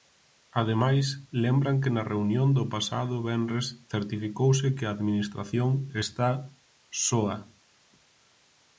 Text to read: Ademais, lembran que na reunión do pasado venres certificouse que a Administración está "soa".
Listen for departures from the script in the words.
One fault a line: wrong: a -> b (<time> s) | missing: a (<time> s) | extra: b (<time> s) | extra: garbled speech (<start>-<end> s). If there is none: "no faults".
no faults